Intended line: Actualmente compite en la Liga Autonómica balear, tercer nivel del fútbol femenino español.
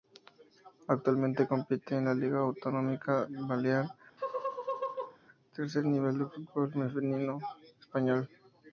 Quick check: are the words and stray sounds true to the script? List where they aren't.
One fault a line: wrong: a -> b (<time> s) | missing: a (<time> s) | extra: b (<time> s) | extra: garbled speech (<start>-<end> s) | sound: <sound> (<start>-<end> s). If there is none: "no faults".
sound: laugh (4.2-5.2 s)